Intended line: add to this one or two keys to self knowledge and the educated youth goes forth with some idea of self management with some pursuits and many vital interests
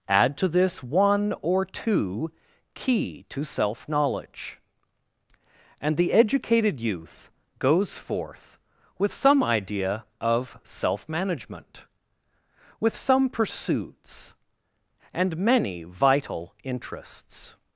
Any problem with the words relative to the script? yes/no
yes